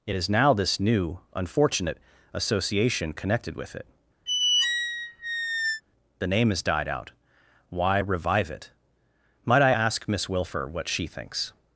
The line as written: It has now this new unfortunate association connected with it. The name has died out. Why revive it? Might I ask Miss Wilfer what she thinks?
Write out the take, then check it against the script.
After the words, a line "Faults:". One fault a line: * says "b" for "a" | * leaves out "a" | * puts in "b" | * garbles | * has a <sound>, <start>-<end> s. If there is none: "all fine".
It is now this new unfortunate association connected with it. The name has died out. Why revive it? Might I ask Miss Wilfer what she thinks?
Faults:
* says "is" for "has"
* has a squeak, 4.3-5.8 s